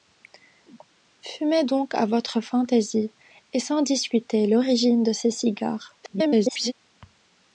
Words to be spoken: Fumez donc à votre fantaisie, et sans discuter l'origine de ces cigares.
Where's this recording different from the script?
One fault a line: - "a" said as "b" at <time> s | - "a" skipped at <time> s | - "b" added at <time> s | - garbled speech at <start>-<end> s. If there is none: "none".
- garbled speech at 6.0-6.7 s